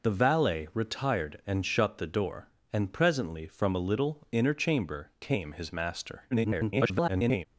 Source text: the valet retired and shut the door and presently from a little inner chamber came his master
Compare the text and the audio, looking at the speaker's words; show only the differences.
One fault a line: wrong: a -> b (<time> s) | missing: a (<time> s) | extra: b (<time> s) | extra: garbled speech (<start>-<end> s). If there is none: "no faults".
extra: garbled speech (6.3-7.5 s)